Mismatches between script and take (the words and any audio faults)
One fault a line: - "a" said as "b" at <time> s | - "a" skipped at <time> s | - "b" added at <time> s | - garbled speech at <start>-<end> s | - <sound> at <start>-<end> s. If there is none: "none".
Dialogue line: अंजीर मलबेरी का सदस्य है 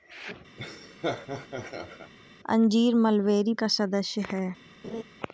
- laugh at 0.6-2.1 s
- laugh at 4.8-5.0 s